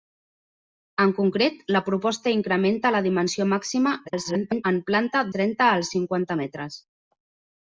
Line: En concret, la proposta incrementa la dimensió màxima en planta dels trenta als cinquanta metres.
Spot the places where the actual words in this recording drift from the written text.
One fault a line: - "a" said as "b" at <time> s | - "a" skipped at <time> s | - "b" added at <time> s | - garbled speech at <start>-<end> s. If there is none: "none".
- garbled speech at 4.0-4.6 s
- "dels" skipped at 5.2 s